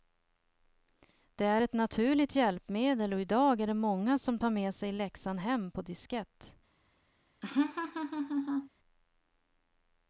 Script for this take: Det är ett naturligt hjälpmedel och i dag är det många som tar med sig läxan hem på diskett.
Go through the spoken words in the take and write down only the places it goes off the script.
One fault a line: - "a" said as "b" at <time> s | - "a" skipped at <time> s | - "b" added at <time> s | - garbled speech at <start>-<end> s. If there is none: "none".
none